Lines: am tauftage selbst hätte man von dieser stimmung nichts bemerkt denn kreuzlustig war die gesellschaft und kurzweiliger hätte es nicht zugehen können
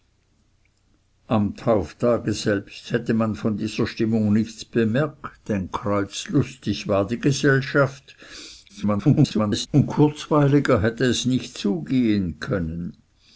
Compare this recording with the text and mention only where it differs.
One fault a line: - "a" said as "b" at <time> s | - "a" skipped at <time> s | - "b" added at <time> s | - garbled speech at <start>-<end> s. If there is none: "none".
- garbled speech at 8.7-9.7 s